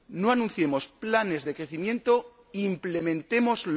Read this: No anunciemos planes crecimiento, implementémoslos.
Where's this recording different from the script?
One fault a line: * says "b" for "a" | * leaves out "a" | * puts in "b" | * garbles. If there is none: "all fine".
* puts in "de"